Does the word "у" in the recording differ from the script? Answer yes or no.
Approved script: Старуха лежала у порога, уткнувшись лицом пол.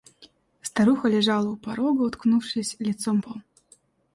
no